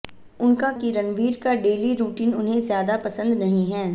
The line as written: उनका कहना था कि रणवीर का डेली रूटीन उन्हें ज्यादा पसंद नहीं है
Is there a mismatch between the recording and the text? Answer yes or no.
yes